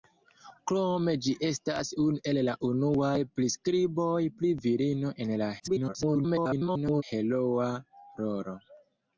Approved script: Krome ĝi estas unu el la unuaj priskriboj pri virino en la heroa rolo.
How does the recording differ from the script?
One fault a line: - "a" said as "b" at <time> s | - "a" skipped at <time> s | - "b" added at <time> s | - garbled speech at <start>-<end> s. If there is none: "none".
- garbled speech at 5.6-7.0 s